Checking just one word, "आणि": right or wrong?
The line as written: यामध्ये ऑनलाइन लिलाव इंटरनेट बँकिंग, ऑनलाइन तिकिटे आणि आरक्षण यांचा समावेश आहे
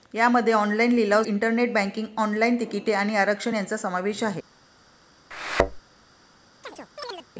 right